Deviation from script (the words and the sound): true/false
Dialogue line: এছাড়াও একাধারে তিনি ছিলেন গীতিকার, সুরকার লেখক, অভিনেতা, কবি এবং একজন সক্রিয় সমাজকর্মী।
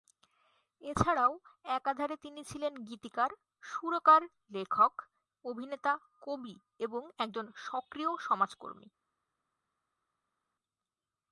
false